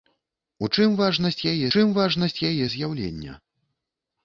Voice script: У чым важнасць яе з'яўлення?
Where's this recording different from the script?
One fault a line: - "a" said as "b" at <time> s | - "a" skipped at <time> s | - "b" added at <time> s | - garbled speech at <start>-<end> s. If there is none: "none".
- "чым важнасць яе" added at 1.7 s